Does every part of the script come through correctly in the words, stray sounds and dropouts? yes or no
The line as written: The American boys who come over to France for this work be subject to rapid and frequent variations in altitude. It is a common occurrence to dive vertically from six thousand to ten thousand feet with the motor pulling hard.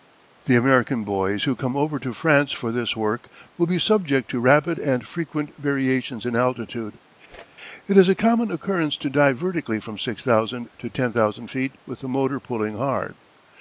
no